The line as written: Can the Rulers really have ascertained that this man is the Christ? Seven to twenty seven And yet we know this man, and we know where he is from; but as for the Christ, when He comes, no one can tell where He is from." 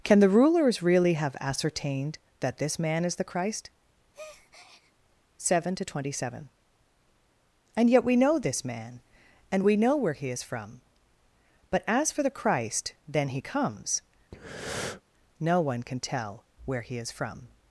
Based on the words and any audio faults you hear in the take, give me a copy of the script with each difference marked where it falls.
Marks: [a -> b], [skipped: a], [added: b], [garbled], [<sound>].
Can the Rulers really have ascertained that this man is the Christ? [breath] Seven to twenty seven And yet we know this man, and we know where he is from; but as for the Christ, [when -> then] He comes, [breath] no one can tell where He is from."